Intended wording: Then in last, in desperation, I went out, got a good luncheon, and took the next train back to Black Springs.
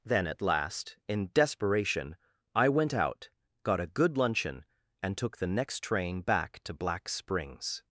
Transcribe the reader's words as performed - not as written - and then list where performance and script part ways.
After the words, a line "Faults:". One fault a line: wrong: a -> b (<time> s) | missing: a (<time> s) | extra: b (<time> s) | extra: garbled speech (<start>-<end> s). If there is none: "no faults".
Then at last, in desperation, I went out, got a good luncheon, and took the next train back to Black Springs.
Faults:
wrong: in -> at (0.3 s)